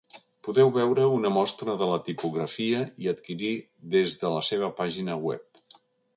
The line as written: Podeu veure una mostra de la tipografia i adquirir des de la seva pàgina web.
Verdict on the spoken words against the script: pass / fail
pass